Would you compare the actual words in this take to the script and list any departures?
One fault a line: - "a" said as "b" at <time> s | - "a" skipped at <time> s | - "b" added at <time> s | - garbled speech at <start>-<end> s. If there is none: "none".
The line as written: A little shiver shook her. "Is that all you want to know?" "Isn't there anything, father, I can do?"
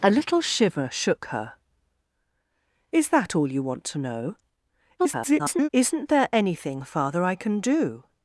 - garbled speech at 5.0-5.7 s